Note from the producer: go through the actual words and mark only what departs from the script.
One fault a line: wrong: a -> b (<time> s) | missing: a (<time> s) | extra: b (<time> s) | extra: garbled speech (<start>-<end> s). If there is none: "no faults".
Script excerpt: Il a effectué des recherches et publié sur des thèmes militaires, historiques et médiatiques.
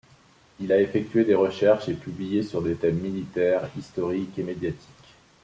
no faults